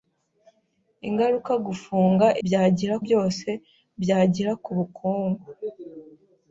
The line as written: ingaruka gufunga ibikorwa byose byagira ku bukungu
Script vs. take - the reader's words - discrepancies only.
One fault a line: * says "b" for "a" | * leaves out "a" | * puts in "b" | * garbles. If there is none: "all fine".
* says "byagira" for "ibikorwa"